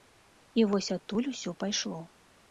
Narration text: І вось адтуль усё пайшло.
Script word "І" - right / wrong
right